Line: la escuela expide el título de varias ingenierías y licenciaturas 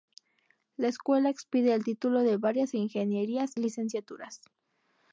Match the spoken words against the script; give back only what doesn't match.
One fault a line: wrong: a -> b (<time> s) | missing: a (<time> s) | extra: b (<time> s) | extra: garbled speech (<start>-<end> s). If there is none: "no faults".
missing: y (3.5 s)